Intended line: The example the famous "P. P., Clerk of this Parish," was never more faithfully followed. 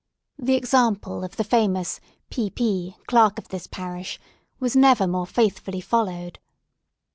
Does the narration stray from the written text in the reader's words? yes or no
yes